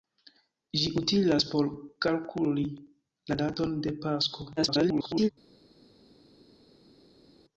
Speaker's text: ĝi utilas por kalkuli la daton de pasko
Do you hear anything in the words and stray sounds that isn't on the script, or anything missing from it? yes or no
yes